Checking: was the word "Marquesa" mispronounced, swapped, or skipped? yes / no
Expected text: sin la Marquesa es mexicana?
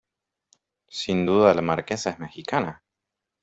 no